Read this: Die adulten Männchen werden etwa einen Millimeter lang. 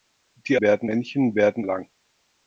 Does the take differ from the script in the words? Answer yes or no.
yes